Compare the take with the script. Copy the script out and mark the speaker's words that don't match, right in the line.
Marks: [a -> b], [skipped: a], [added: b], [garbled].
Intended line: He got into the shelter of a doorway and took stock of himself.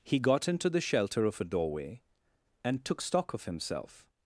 He got into the shelter of a doorway and took stock of himself.